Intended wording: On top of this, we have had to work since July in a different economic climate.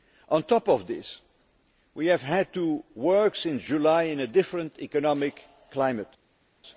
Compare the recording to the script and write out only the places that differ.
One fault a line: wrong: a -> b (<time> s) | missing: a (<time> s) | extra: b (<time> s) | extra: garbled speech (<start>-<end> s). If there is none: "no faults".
no faults